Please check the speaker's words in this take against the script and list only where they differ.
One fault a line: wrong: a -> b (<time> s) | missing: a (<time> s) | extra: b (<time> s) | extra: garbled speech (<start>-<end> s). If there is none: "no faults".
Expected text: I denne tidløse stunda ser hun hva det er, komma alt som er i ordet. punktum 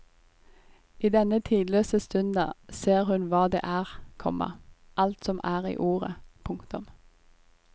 no faults